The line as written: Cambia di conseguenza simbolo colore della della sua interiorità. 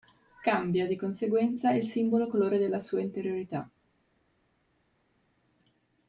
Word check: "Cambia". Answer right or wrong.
right